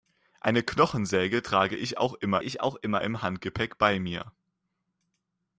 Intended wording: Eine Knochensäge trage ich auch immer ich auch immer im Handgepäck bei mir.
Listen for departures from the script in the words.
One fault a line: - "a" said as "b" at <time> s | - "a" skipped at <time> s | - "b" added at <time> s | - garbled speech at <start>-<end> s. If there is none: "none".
none